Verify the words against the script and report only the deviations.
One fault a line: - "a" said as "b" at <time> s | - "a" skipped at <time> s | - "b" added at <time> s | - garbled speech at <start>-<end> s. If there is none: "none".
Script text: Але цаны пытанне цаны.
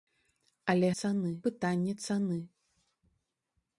none